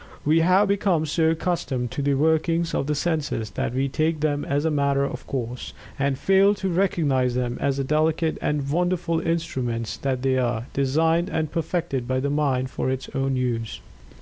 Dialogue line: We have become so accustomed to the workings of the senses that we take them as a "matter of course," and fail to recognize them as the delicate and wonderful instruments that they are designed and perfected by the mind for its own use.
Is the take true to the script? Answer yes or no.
yes